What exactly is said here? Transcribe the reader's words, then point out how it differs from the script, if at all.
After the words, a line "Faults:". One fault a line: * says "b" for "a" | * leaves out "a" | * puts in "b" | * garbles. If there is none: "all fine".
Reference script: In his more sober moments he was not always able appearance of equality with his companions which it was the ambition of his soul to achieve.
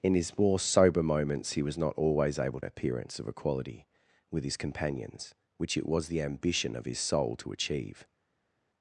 In his more sober moments he was not always able appearance of equality with his companions which it was the ambition of his soul to achieve.
Faults:
all fine